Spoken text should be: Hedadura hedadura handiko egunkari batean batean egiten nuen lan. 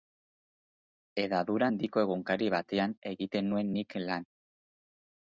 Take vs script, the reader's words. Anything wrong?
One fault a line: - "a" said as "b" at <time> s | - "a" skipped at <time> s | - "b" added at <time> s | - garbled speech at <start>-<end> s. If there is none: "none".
- "hedadura" skipped at 1.7 s
- "batean" skipped at 2.9 s
- "nik" added at 3.8 s